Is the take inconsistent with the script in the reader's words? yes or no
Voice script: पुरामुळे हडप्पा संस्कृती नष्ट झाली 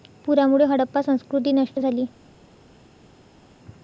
no